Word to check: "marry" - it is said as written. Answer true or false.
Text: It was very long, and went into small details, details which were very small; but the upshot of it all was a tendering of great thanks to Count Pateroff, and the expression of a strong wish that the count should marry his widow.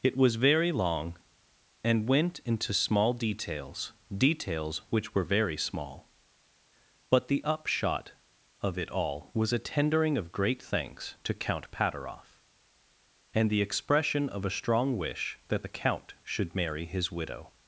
true